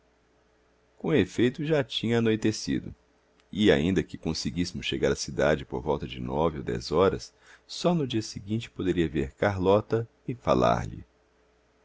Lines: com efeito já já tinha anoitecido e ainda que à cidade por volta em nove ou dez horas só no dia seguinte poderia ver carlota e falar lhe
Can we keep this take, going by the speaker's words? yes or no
no